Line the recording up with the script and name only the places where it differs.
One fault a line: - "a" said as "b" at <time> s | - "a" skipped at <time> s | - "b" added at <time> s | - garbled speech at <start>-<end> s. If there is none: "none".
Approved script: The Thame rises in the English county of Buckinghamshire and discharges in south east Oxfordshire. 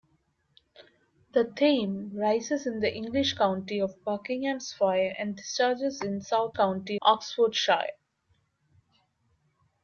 - "east" said as "county" at 6.5 s